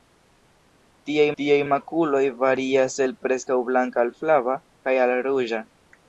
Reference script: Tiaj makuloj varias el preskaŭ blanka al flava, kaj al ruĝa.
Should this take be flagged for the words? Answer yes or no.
yes